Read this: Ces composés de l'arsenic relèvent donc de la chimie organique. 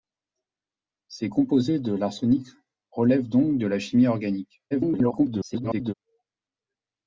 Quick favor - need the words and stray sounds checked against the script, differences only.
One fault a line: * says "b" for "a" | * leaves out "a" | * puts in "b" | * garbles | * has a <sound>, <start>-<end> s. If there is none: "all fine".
* garbles